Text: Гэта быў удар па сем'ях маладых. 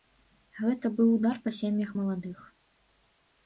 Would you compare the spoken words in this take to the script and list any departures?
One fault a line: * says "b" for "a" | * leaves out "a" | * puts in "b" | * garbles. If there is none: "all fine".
all fine